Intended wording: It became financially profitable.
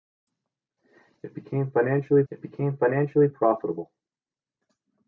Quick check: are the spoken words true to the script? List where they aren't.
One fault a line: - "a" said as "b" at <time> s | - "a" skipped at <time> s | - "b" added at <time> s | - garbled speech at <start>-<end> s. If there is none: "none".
- "it became financially" added at 2.3 s